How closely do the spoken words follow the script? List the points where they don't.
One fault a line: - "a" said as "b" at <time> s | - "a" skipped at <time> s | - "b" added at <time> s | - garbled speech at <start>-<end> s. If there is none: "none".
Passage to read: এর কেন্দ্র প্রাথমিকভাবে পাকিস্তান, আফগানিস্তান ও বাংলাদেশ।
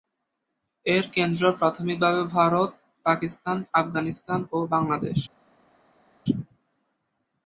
- "ভারত" added at 2.4 s